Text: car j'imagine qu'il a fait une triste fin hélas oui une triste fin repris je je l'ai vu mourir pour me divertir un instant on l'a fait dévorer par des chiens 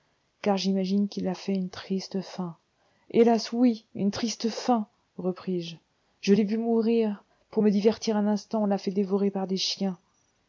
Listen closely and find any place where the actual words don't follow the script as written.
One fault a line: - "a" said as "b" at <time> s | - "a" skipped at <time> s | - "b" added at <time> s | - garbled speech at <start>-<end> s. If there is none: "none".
none